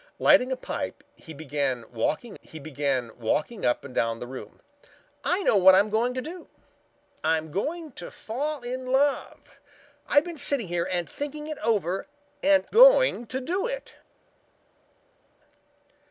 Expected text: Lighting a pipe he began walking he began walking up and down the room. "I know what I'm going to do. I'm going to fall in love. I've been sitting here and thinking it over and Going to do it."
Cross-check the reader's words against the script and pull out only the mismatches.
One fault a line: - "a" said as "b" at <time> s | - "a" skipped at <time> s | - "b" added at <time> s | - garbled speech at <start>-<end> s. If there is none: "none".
none